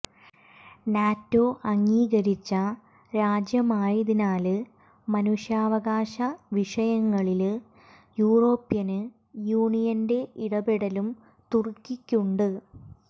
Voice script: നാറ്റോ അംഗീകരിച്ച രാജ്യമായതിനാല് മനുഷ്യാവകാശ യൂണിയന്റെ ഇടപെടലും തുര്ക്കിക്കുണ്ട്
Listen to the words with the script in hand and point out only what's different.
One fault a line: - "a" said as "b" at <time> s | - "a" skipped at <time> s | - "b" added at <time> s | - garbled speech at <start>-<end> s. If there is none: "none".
- "വിഷയങ്ങളില് യൂറോപ്യന്" added at 6.5 s